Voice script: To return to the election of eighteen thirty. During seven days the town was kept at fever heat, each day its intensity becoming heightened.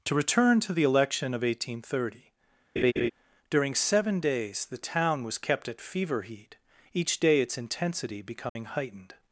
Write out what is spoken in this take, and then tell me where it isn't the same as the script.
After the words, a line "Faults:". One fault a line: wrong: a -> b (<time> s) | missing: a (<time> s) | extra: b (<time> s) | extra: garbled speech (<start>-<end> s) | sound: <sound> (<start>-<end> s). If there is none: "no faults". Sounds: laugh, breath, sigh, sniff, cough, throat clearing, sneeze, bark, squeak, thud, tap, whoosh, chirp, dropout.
To return to the election of eighteen thirty. During seven days the town was kept at fever heat, each day its intensity becoming heightened.
Faults:
sound: laugh (2.8-3.1 s)
sound: dropout (8.5-8.6 s)